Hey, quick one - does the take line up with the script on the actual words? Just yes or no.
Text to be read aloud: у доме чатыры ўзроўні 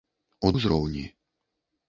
no